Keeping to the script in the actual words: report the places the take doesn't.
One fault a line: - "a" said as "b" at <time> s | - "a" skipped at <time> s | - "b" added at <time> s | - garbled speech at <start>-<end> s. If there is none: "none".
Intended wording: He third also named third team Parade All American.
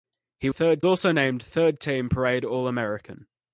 none